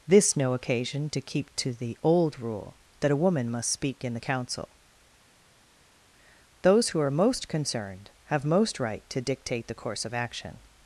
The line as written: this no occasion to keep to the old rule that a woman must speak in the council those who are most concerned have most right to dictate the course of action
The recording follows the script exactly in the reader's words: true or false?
true